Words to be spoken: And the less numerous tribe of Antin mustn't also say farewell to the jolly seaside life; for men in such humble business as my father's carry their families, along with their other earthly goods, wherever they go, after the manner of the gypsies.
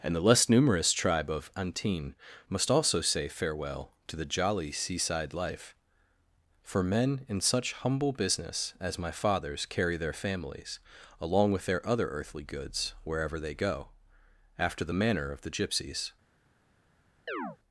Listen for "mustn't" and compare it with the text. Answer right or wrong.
wrong